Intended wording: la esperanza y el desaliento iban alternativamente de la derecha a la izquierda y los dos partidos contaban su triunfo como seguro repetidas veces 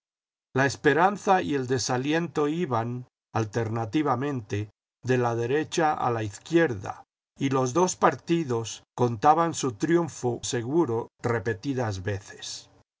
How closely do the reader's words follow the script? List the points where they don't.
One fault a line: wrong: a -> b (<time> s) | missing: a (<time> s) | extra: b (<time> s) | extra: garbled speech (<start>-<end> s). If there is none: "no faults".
missing: como (10.4 s)